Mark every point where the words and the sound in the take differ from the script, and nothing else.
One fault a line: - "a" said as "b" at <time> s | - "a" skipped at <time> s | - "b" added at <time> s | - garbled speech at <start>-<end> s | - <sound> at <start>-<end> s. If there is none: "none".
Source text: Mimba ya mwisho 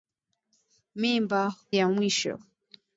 none